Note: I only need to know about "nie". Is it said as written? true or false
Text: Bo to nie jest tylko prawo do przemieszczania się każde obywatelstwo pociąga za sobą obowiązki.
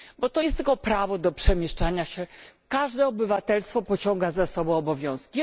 false